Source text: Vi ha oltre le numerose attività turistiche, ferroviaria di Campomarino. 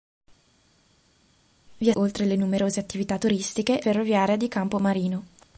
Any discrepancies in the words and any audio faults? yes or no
no